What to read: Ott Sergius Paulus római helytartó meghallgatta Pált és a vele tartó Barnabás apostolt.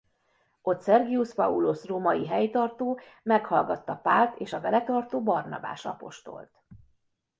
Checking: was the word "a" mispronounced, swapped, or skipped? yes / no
no